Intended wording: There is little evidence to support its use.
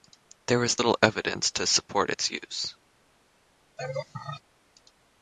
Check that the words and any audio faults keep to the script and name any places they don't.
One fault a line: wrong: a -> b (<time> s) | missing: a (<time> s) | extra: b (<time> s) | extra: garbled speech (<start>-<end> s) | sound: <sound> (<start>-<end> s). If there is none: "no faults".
sound: laugh (3.8-4.4 s)